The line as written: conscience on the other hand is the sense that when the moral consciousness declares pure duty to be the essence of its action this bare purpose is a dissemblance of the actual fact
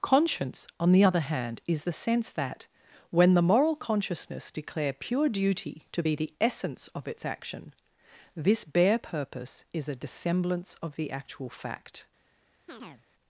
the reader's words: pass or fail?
fail